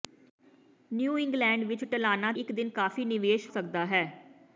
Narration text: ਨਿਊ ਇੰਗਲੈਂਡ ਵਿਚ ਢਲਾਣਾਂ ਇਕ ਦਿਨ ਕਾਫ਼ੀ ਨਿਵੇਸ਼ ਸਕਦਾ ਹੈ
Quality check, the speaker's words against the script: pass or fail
pass